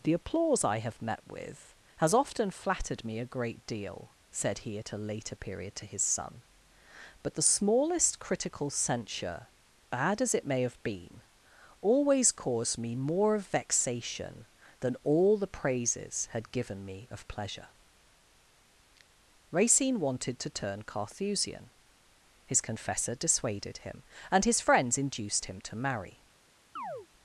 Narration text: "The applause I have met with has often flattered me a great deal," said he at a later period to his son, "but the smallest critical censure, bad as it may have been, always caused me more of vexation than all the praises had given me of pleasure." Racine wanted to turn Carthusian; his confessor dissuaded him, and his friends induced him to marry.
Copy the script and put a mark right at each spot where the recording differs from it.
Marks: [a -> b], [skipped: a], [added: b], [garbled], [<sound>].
"The applause I have met with has often flattered me a great deal," said he at a later period to his son, "but the smallest critical censure, bad as it may have been, always caused me more of vexation than all the praises had given me of pleasure." Racine wanted to turn Carthusian; his confessor dissuaded him, and his friends induced him to marry. [chirp]